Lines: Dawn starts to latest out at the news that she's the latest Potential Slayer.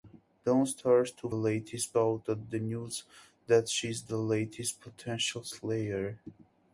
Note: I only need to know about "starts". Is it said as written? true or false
true